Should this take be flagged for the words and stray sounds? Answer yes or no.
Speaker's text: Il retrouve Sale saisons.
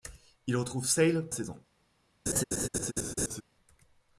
yes